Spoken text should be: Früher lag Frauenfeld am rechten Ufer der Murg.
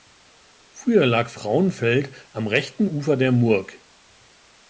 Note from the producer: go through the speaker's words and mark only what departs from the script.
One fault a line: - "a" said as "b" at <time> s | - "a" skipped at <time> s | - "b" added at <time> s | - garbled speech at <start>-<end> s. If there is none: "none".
none